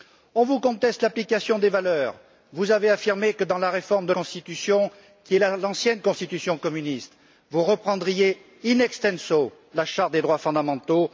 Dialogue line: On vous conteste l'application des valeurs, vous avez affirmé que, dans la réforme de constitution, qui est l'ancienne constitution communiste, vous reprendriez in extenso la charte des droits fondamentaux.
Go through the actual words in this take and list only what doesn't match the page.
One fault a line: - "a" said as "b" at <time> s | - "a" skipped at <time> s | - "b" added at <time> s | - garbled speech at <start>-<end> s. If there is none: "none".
none